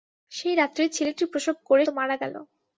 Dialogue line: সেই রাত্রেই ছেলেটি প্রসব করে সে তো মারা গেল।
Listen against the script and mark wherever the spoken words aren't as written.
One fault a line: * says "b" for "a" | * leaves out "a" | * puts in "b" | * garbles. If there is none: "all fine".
* leaves out "সে"